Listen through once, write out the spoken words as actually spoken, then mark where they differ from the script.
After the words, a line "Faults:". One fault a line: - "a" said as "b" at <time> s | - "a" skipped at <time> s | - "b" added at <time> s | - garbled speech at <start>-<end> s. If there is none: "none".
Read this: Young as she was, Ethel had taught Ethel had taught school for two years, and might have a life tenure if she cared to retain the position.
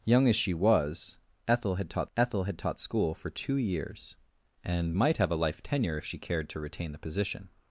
Young as she was, Ethel had taught Ethel had taught school for two years, and might have a life tenure if she cared to retain the position.
Faults:
none